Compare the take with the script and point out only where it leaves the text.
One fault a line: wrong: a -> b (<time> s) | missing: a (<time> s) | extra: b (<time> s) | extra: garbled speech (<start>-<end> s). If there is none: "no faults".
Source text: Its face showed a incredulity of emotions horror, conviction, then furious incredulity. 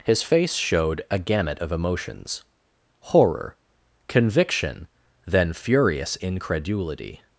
wrong: Its -> His (0.0 s)
wrong: incredulity -> gamut (1.2 s)